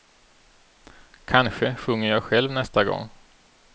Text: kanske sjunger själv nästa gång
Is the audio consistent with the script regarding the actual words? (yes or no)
no